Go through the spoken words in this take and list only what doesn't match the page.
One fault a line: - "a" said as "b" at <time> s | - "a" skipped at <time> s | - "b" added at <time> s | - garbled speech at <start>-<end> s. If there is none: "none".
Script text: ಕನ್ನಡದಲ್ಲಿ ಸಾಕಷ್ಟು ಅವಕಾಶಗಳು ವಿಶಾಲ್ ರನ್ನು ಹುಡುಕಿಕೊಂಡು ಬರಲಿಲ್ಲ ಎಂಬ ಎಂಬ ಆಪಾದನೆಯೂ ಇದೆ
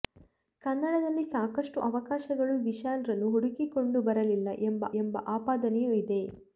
none